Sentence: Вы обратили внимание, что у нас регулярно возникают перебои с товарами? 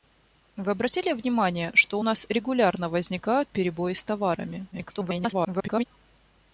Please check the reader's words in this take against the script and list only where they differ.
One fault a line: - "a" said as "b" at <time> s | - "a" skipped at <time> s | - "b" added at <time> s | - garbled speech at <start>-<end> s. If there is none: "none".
- garbled speech at 4.7-5.9 s